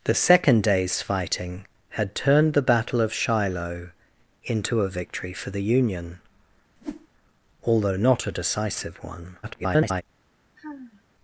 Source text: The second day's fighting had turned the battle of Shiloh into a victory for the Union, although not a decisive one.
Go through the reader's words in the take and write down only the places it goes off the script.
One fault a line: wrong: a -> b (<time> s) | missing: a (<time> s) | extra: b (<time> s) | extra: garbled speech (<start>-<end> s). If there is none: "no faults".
extra: garbled speech (9.4-10.0 s)